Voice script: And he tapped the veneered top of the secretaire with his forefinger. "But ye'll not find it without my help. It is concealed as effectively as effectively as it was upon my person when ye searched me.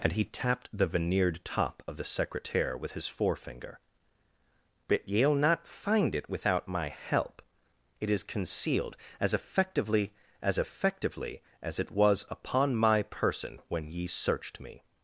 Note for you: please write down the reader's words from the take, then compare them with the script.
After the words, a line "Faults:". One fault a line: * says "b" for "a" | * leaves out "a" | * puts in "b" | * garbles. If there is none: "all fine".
And he tapped the veneered top of the secretaire with his forefinger. "But ye'll not find it without my help. It is concealed as effectively as effectively as it was upon my person when ye searched me.
Faults:
all fine